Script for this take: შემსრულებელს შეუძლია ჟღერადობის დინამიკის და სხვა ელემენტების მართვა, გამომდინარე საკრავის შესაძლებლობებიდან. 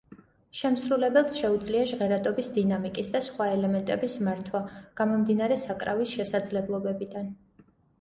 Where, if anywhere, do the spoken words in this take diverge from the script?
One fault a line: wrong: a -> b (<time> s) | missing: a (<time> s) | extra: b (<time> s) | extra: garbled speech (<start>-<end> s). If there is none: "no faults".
no faults